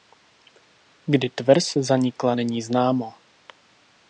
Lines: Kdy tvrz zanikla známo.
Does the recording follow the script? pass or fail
fail